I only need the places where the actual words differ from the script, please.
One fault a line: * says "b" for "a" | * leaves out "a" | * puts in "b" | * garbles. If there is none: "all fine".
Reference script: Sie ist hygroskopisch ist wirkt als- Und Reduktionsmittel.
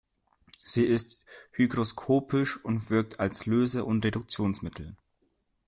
* says "und" for "ist"
* puts in "Löse"